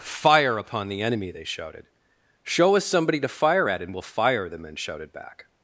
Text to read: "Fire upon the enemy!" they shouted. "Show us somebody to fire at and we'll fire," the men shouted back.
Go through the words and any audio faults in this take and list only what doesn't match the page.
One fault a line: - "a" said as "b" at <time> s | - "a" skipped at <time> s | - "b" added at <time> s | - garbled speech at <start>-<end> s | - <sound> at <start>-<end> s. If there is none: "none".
none